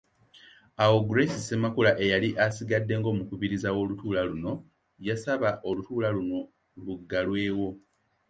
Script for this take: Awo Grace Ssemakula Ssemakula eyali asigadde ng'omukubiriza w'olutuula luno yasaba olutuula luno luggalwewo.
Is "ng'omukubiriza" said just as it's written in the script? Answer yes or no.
yes